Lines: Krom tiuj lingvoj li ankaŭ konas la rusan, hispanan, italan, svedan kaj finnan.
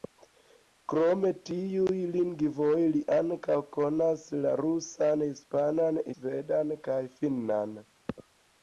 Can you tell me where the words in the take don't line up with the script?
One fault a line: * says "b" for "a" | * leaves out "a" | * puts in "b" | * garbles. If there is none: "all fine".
* leaves out "italan"